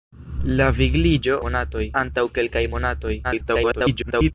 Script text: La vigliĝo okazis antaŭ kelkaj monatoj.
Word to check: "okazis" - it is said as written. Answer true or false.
false